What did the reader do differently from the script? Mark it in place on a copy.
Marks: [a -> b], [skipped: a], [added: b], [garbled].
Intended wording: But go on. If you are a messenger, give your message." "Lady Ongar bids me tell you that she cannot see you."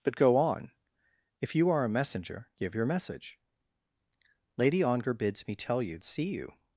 But go on. If you are a messenger, give your message." "Lady Ongar bids me tell you [skipped: that she cannot] see you."